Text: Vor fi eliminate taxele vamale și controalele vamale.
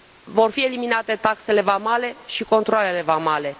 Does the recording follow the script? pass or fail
pass